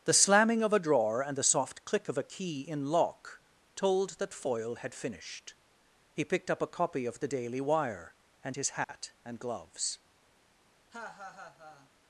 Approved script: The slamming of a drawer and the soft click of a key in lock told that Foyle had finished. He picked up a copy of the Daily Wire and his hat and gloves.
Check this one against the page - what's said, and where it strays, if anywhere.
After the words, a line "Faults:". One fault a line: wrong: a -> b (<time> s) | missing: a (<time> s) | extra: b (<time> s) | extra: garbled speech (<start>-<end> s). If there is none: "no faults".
The slamming of a drawer and the soft click of a key in lock told that Foyle had finished. He picked up a copy of the Daily Wire and his hat and gloves.
Faults:
no faults